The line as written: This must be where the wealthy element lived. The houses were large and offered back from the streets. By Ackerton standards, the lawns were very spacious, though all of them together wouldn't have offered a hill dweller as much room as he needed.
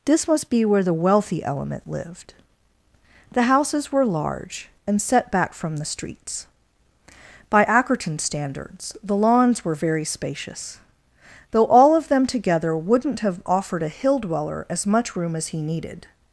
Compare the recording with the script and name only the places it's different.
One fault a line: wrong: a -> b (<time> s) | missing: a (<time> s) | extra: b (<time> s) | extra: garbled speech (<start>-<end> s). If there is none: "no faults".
wrong: offered -> set (5.0 s)